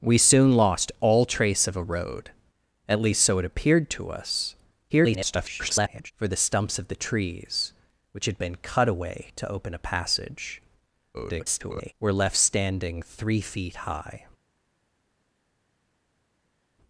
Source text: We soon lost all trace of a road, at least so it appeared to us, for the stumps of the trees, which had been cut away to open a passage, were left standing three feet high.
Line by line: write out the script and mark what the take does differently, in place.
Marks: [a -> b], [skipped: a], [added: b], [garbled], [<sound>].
We soon lost all trace of a road, at least so it appeared to us, [garbled] for the stumps of the trees, which had been cut away to open a passage, [garbled] were left standing three feet high.